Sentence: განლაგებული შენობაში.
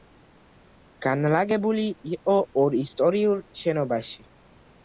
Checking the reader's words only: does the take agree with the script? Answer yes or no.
no